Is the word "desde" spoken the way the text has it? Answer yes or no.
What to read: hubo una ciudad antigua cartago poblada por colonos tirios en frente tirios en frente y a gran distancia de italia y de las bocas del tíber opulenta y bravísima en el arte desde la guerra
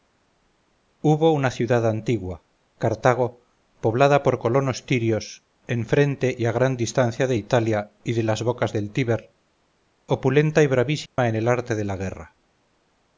no